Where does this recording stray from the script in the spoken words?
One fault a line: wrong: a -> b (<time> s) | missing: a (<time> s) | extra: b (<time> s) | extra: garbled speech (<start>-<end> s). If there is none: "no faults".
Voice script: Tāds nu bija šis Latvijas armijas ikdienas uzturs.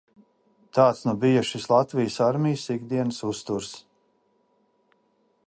no faults